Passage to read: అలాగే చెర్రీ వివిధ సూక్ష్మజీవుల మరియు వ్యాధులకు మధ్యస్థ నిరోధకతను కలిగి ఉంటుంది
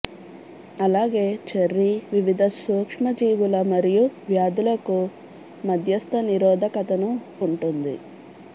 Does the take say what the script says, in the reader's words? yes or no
no